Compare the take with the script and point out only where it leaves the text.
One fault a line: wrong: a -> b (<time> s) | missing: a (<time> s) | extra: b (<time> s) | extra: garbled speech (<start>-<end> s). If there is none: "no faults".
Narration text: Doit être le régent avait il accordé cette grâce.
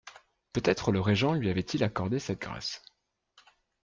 wrong: Doit -> Peut (0.5 s)
extra: lui (1.4 s)